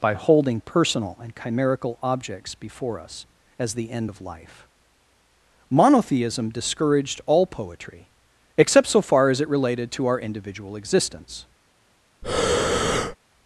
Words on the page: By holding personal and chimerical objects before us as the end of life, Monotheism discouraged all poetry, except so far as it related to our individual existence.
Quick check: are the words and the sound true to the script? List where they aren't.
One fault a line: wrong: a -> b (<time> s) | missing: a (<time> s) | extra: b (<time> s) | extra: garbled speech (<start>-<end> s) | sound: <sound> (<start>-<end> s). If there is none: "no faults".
sound: breath (12.2-13.2 s)